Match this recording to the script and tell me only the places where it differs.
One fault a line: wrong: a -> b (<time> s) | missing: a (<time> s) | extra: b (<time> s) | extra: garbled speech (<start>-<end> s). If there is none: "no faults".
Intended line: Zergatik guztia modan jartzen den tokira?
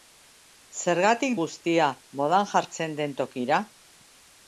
no faults